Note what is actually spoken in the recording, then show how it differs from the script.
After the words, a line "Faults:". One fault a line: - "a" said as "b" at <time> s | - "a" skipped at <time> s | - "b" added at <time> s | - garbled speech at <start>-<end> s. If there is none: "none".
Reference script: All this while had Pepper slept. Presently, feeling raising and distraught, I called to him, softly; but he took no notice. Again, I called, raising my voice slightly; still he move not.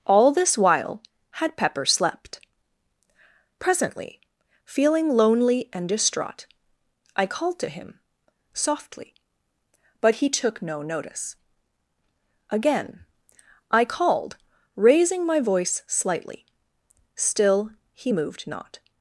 All this while had Pepper slept. Presently, feeling lonely and distraught, I called to him, softly; but he took no notice. Again, I called, raising my voice slightly; still he moved not.
Faults:
- "raising" said as "lonely" at 5.1 s
- "move" said as "moved" at 18.1 s